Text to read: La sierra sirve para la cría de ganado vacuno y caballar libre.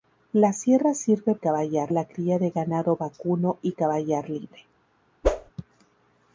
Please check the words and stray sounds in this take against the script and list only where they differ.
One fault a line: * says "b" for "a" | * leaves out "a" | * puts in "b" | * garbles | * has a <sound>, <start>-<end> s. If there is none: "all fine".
* says "caballar" for "para"
* has a whoosh, 5.2-5.5 s